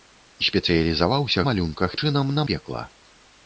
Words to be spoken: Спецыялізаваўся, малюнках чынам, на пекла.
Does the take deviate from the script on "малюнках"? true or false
false